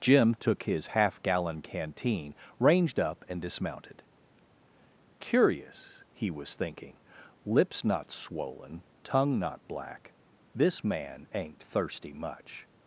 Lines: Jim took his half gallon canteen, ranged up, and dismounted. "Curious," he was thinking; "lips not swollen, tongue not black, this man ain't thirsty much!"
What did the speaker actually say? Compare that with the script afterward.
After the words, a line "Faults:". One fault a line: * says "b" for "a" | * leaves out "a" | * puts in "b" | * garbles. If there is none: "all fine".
Jim took his half gallon canteen, ranged up, and dismounted. "Curious," he was thinking; "lips not swollen, tongue not black, this man ain't thirsty much!"
Faults:
all fine